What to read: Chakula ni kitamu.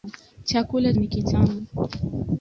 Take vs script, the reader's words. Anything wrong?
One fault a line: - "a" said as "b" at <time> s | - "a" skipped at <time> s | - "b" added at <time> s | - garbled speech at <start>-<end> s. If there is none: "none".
none